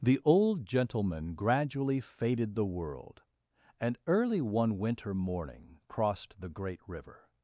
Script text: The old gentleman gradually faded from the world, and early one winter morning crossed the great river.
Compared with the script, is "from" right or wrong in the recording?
wrong